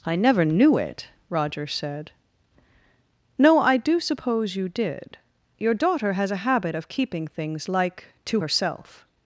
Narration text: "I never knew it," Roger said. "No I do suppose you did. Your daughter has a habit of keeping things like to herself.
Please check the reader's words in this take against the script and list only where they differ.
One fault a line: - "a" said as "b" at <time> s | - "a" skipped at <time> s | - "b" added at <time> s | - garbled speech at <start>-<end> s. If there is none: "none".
none